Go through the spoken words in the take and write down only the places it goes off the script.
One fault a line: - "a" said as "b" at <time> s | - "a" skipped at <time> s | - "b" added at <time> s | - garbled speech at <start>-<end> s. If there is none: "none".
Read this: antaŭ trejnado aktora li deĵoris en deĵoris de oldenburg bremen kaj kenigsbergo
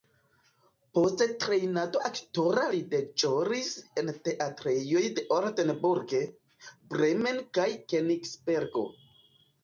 - "antaŭ" said as "post" at 1.0 s
- "deĵoris" said as "teatrejoj" at 4.3 s